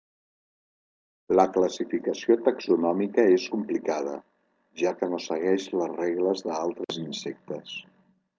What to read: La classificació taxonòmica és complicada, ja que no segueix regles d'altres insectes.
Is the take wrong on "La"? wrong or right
right